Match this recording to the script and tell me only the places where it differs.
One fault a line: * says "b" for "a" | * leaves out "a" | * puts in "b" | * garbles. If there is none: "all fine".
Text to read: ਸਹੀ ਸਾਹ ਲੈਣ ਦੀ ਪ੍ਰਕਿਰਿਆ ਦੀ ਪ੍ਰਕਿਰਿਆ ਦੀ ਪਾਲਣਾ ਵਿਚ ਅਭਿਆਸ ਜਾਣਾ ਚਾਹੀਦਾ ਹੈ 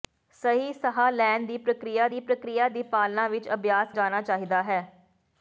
all fine